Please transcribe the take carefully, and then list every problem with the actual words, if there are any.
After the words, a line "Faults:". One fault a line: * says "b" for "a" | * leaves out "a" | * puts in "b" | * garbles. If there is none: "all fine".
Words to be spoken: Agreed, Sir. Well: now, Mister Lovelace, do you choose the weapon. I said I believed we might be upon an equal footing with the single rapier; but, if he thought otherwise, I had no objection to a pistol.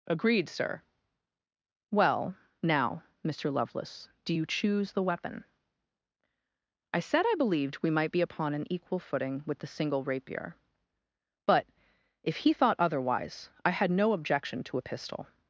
Agreed, Sir. Well: now, Mister Lovelace, do you choose the weapon. I said I believed we might be upon an equal footing with the single rapier; but, if he thought otherwise, I had no objection to a pistol.
Faults:
all fine